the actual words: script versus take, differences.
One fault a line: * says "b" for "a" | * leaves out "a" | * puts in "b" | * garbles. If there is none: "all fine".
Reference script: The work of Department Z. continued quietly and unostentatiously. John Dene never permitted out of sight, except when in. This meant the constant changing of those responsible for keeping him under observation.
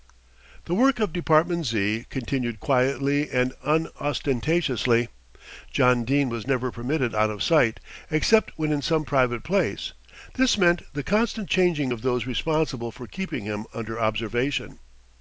* puts in "was"
* puts in "some private place"